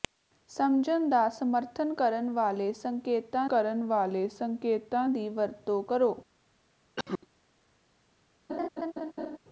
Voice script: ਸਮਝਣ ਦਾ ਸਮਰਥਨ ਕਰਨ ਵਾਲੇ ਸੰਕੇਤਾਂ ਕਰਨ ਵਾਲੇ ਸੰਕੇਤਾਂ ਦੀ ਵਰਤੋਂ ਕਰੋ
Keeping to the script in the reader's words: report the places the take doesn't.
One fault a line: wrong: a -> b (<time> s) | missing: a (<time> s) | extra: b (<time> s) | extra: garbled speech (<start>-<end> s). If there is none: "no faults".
no faults